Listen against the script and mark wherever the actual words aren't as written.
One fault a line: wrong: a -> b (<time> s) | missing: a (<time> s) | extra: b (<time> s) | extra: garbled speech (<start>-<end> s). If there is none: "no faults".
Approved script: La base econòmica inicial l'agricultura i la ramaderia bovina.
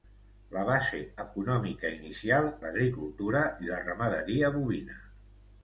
no faults